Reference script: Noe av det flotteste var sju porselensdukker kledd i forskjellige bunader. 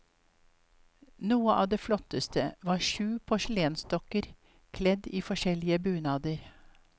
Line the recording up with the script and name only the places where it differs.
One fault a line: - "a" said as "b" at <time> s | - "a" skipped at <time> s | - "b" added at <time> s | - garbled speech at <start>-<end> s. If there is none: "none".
none